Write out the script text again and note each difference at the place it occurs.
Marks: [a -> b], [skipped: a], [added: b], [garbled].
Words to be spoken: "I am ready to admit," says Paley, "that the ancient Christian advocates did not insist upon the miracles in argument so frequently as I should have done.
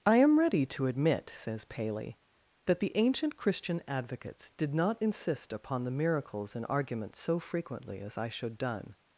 "I am ready to admit," says Paley, "that the ancient Christian advocates did not insist upon the miracles in argument so frequently as I should [skipped: have] done.